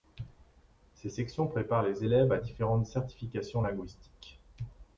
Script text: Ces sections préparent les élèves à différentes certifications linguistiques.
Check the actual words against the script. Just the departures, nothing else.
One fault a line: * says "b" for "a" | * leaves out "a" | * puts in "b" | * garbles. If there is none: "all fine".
all fine